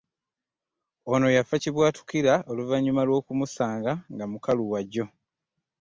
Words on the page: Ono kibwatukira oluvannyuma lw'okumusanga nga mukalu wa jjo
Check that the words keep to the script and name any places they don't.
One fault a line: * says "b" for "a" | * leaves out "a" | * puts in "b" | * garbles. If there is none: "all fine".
* puts in "yafa"